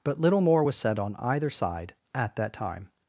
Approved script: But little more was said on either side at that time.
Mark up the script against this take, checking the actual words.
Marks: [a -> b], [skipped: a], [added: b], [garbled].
But little more was said on either side at that time.